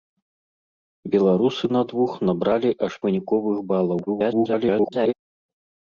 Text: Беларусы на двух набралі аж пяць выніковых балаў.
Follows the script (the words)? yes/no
no